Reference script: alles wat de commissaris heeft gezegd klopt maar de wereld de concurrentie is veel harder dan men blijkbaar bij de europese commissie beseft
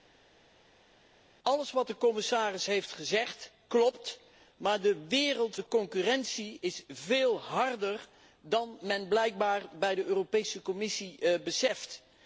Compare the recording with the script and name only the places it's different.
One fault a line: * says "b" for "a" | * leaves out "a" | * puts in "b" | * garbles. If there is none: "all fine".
all fine